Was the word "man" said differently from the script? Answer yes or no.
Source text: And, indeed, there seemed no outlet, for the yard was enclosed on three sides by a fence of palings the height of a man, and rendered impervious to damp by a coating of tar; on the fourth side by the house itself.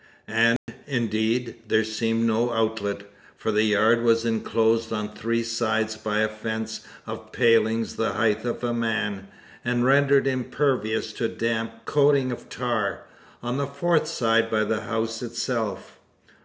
no